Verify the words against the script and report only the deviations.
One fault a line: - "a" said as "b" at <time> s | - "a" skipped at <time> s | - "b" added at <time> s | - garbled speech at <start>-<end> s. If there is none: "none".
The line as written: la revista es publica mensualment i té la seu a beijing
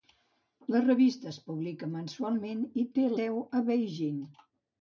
- "la" skipped at 3.1 s